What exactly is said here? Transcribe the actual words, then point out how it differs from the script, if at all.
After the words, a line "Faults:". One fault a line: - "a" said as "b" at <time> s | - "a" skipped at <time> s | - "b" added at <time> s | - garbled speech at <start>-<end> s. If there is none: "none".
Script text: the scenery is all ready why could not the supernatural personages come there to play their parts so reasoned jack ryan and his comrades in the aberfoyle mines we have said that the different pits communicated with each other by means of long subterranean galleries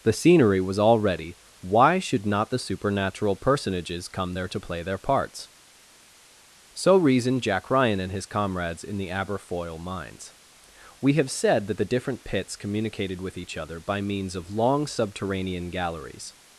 the scenery was all ready why should not the supernatural personages come there to play their parts so reasoned jack ryan and his comrades in the aberfoyle mines we have said that the different pits communicated with each other by means of long subterranean galleries
Faults:
- "is" said as "was" at 0.6 s
- "could" said as "should" at 2.0 s